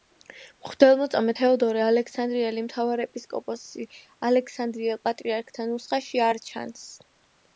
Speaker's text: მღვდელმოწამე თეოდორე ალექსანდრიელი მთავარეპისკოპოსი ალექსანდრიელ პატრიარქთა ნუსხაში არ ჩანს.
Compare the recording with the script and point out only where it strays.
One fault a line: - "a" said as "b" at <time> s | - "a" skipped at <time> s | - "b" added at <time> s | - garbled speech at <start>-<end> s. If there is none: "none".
none